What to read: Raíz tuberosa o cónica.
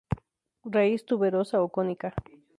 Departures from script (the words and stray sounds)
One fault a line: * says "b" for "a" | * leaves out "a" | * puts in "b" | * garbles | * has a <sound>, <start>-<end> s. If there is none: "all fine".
all fine